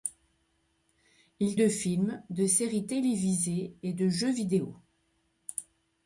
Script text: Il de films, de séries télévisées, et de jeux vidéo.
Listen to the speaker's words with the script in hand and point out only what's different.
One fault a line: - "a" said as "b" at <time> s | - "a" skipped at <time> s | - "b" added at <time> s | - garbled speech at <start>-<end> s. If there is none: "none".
none